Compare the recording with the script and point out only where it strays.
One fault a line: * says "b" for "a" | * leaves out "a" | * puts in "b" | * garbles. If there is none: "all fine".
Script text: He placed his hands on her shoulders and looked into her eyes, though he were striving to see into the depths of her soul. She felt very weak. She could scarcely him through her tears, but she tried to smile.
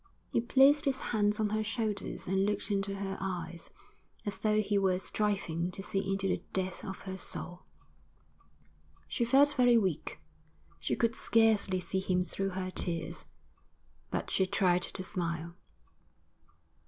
* puts in "as"
* puts in "see"